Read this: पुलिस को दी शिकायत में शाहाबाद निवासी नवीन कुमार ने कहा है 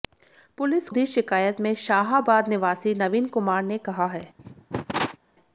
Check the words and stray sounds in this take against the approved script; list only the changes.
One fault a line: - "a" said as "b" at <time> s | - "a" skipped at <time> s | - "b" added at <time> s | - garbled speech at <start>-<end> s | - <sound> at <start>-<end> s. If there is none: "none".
- "को" skipped at 0.9 s
- cough at 4.4-5.2 s